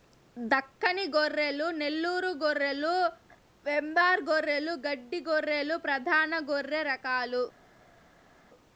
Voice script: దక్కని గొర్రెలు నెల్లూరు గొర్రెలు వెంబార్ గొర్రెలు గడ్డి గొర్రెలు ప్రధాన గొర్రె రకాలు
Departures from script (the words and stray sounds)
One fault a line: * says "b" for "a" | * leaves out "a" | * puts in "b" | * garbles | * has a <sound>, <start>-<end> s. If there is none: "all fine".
all fine